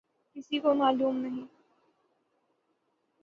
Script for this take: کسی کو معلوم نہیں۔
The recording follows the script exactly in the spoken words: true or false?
true